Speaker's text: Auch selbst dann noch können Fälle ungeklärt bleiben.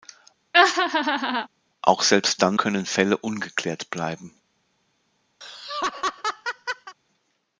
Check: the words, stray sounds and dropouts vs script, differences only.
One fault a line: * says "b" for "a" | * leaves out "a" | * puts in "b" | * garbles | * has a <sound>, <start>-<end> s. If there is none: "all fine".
* has a laugh, 0.5-1.5 s
* leaves out "noch"
* has a laugh, 5.4-6.9 s